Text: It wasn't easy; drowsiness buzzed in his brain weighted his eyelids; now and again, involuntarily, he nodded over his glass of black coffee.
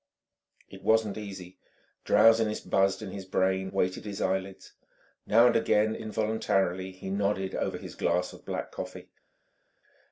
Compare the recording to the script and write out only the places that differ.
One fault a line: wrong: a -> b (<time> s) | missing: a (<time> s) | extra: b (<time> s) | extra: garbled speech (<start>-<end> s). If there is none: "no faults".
no faults